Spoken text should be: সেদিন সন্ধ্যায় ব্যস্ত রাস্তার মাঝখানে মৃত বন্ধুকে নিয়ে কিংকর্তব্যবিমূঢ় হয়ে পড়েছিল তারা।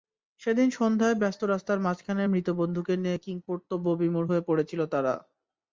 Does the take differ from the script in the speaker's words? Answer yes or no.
no